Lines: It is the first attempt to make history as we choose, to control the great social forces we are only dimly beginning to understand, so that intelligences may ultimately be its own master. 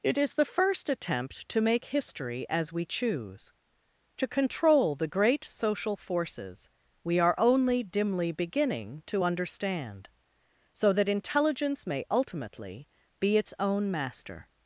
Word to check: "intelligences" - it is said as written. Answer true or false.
false